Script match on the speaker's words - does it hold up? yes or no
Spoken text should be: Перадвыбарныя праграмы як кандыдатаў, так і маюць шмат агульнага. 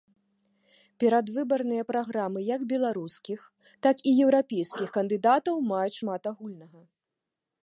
no